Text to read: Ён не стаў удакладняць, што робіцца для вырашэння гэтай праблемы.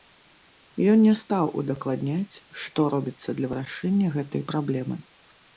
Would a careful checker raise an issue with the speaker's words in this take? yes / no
no